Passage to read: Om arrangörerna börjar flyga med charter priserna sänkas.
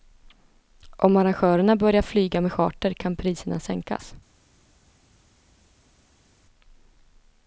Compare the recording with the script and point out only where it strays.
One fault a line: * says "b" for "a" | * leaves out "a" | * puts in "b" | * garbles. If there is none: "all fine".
* puts in "kan"